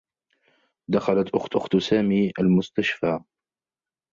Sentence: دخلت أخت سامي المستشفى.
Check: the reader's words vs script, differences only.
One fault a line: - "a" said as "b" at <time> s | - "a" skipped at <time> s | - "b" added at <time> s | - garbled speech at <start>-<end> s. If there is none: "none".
- "أخت" added at 1.6 s